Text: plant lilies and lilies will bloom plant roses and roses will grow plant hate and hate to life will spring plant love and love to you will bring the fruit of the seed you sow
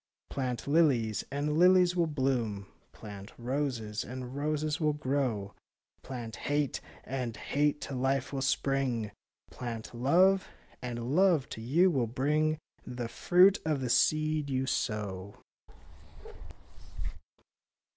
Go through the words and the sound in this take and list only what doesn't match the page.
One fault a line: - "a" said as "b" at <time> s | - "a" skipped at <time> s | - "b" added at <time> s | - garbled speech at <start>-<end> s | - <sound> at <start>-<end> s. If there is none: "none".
- bark at 15.7-17.2 s